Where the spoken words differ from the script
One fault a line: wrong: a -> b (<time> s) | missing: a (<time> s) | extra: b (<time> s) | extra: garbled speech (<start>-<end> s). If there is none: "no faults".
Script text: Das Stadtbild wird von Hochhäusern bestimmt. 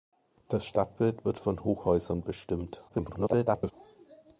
extra: garbled speech (2.9-3.7 s)